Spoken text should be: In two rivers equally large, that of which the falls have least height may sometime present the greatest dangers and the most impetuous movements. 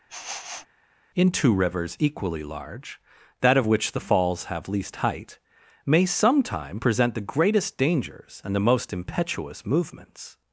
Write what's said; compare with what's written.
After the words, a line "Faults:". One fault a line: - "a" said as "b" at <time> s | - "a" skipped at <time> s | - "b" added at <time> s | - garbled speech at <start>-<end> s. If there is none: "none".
In two rivers equally large, that of which the falls have least height may sometime present the greatest dangers and the most impetuous movements.
Faults:
none